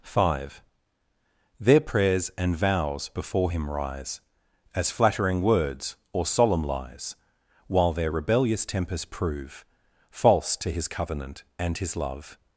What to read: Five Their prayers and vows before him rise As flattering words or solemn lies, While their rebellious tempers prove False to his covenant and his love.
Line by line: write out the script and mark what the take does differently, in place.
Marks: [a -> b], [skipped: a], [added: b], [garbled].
Five Their prayers and vows before him rise As flattering words or solemn lies, While their rebellious tempers prove False to his covenant and his love.